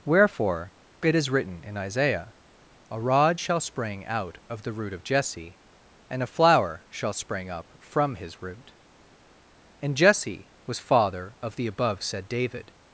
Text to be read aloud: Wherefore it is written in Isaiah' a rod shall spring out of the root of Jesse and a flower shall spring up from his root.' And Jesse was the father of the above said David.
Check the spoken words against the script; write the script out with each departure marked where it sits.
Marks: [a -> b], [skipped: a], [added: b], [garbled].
Wherefore it is written in Isaiah' a rod shall spring out of the root of Jesse and a flower shall spring up from his root.' And Jesse was [skipped: the] father of the above said David.